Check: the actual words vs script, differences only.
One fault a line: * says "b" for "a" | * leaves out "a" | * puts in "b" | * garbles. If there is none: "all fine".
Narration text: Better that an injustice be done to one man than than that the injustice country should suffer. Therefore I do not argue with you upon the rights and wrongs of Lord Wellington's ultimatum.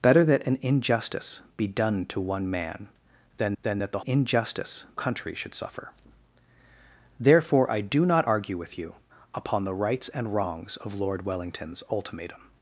all fine